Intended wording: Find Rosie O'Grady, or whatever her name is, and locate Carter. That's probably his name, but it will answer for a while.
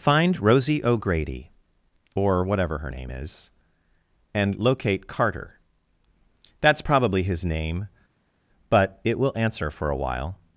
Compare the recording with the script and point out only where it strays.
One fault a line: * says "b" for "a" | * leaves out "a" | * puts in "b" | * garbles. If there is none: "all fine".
all fine